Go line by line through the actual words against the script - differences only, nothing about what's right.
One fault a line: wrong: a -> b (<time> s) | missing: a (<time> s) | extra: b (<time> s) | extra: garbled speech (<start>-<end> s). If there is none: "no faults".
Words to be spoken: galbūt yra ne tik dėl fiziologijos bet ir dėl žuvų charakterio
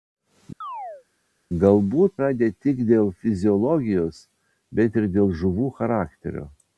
no faults